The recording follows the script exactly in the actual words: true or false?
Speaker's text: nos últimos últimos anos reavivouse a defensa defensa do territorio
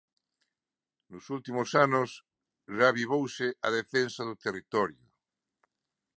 false